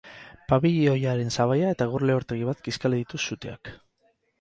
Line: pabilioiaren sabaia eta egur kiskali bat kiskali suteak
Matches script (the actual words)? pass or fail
fail